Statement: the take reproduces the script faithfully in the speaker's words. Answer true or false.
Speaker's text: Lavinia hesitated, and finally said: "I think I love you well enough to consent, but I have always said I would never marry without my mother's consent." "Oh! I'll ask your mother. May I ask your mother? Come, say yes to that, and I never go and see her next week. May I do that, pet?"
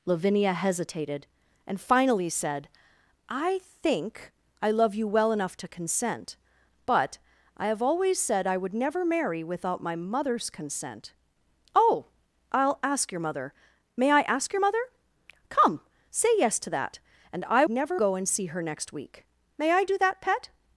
true